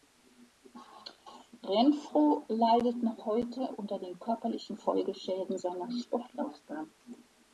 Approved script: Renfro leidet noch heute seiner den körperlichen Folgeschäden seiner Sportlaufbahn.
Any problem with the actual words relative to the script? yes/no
yes